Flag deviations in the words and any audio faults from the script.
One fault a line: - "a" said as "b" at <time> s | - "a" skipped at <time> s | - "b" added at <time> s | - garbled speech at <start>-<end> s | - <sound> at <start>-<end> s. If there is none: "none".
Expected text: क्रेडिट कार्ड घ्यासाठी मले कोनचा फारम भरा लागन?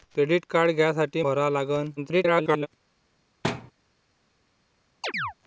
- "मले कोनचा फारम" skipped at 1.2 s
- garbled speech at 2.0-2.7 s
- thud at 3.4-3.7 s
- chirp at 5.0-5.3 s